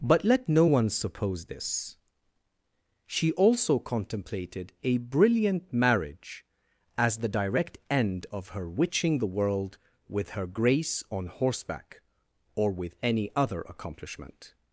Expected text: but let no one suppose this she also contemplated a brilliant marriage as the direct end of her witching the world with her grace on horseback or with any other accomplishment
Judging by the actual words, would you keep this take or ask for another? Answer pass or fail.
pass